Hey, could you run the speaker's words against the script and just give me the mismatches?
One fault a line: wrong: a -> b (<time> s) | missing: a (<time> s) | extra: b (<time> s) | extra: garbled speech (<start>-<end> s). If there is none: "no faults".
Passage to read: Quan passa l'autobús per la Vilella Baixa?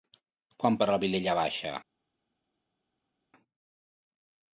missing: passa l'autobús (0.8 s)